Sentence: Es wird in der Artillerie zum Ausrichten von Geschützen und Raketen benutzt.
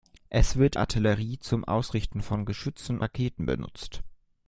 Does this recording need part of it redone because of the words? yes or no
yes